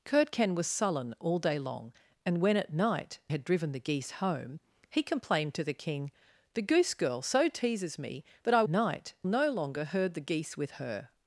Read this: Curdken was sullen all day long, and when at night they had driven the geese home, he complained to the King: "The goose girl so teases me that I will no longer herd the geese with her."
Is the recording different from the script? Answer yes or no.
yes